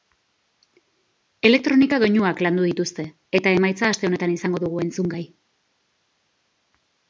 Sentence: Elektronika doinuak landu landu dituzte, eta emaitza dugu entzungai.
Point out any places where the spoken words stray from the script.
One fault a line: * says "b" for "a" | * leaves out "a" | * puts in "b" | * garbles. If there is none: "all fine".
* leaves out "landu"
* puts in "aste honetan izango"